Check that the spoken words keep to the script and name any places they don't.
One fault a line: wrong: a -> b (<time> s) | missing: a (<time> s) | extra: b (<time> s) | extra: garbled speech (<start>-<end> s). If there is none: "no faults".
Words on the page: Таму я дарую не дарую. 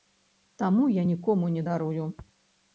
wrong: дарую -> нікому (1.1 s)